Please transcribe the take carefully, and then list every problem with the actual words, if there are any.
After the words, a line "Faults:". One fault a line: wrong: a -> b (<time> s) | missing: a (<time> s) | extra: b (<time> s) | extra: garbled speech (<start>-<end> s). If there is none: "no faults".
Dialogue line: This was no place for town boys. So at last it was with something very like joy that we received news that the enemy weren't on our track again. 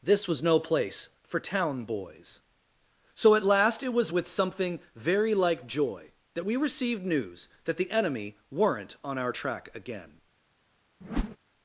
This was no place for town boys. So at last it was with something very like joy that we received news that the enemy weren't on our track again.
Faults:
no faults